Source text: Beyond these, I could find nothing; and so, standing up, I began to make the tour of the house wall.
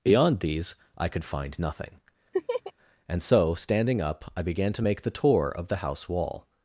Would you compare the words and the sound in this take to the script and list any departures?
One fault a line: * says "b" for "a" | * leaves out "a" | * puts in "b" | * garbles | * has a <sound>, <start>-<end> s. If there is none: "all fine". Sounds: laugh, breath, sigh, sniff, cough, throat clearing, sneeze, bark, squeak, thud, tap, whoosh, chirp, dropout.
* has a laugh, 2.3-2.7 s